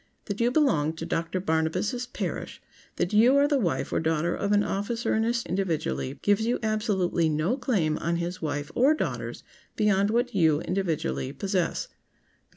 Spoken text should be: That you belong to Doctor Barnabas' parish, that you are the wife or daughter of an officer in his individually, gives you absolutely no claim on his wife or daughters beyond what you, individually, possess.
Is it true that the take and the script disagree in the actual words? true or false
false